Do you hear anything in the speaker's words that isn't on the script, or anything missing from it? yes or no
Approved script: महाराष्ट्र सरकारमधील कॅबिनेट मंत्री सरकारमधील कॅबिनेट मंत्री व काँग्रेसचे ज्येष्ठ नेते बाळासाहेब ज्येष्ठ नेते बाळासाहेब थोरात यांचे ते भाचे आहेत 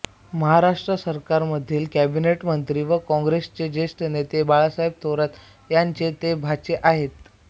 yes